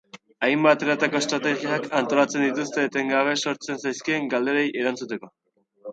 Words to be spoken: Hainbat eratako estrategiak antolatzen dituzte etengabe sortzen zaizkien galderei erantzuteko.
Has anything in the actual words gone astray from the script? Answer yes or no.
no